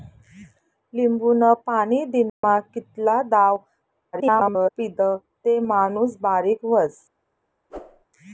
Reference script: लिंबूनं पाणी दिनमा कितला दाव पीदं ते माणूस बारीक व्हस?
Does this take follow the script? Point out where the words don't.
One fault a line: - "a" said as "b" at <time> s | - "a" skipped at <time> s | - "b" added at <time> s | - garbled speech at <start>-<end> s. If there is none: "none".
- garbled speech at 4.1-4.7 s